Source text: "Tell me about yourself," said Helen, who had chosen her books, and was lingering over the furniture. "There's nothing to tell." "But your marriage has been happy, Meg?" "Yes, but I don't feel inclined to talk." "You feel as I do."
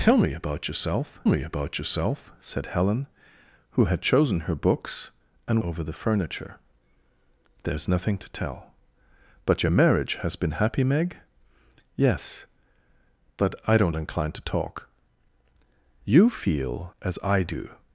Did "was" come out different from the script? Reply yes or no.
yes